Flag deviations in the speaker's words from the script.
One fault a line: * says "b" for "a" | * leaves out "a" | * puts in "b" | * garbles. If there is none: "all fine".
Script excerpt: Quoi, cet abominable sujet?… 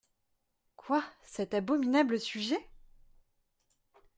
all fine